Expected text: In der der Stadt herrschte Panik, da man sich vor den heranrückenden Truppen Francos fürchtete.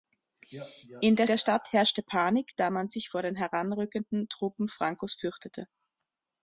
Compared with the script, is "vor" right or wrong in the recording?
right